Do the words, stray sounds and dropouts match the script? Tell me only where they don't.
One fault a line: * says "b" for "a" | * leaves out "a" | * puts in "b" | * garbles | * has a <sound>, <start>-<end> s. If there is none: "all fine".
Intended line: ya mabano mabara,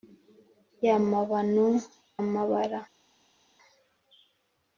all fine